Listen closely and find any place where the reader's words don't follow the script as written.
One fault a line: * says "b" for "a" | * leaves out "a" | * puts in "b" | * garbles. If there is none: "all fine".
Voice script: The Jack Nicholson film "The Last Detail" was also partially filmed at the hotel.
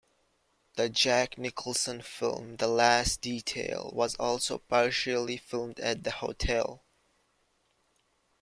all fine